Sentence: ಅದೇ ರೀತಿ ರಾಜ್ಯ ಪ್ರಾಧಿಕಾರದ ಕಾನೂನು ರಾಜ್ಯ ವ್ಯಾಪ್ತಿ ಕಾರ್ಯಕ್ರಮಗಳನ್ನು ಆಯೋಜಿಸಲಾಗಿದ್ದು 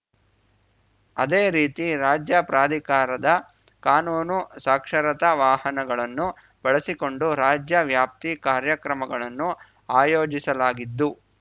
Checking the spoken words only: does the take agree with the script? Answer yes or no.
no